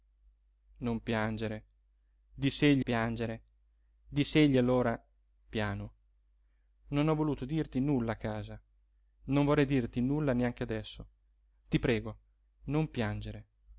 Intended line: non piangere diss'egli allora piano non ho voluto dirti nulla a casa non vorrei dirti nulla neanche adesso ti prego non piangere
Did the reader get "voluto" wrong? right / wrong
right